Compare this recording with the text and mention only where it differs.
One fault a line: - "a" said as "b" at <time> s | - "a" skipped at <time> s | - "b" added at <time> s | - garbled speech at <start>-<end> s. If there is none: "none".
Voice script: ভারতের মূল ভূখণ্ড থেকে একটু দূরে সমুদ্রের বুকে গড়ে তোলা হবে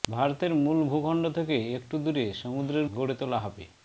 - "বুকে" skipped at 2.9 s